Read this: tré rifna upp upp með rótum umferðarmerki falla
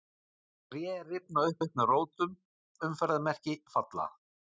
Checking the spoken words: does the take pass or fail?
pass